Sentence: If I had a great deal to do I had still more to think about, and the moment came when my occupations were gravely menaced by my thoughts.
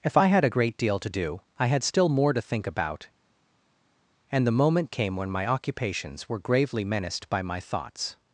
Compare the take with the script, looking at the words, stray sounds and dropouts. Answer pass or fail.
pass